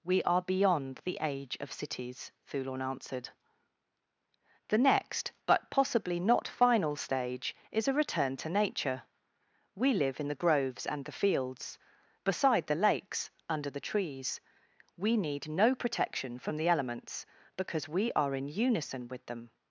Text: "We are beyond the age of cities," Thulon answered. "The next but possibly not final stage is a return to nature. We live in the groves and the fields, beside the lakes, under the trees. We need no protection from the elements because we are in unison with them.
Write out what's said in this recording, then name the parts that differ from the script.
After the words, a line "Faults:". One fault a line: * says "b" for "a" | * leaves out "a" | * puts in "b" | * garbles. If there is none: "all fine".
"We are beyond the age of cities," Thulon answered. "The next but possibly not final stage is a return to nature. We live in the groves and the fields, beside the lakes, under the trees. We need no protection from the elements because we are in unison with them.
Faults:
all fine